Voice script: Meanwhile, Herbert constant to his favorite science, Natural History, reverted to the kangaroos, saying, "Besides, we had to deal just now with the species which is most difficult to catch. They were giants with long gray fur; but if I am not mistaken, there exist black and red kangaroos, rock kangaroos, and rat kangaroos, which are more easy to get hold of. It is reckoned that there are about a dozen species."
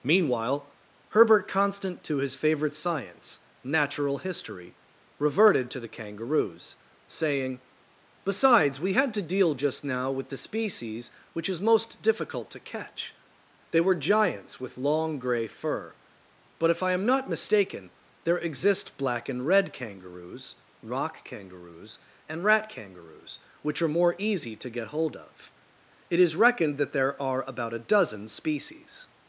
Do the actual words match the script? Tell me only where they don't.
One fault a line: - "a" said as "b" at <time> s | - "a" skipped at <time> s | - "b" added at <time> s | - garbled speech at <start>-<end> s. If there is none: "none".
none